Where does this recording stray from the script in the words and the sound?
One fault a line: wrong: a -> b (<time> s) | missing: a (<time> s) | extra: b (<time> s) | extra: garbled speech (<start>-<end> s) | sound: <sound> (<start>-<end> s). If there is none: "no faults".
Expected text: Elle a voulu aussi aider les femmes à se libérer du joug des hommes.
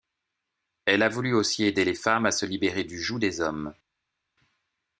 no faults